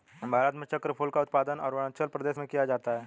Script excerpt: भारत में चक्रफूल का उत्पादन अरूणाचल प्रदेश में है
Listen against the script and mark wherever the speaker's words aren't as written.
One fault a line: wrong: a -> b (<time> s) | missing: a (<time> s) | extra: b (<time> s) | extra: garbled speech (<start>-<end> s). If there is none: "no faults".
extra: किया जाता (2.5 s)